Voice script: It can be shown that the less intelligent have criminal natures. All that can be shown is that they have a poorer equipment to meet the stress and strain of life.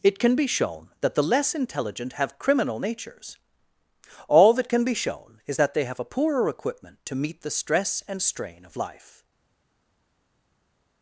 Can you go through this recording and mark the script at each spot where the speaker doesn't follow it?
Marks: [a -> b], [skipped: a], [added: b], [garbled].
It can be shown that the less intelligent have criminal natures. All that can be shown is that they have a poorer equipment to meet the stress and strain of life.